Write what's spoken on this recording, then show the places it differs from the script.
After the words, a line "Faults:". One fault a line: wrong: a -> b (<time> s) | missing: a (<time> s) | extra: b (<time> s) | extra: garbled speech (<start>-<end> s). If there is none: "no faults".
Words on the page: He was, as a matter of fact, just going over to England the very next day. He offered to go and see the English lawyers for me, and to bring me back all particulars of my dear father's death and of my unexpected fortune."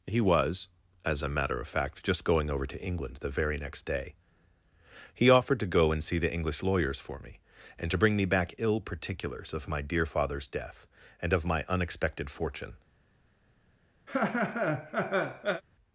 He was, as a matter of fact, just going over to England the very next day. He offered to go and see the English lawyers for me, and to bring me back ill particulars of my dear father's death and of my unexpected fortune."
Faults:
wrong: all -> ill (8.6 s)